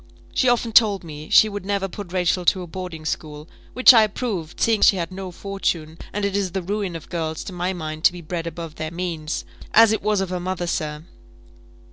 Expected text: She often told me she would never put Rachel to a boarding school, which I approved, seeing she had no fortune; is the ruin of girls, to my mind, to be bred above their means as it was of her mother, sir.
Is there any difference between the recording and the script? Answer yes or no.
yes